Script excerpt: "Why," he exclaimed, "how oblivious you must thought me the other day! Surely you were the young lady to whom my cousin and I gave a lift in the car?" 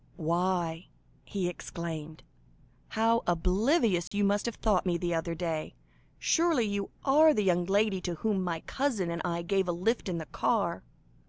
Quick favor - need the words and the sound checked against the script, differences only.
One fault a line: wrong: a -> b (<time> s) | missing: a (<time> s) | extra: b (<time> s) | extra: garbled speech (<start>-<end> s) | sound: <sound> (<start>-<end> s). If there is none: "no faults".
sound: dropout (4.1-4.1 s)
extra: have (4.4 s)
wrong: were -> are (7.0 s)